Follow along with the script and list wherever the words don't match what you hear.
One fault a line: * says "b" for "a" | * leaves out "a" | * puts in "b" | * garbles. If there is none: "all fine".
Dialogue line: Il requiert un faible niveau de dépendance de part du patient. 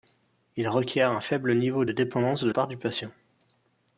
all fine